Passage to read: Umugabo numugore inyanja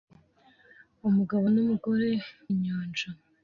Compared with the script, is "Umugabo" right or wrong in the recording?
right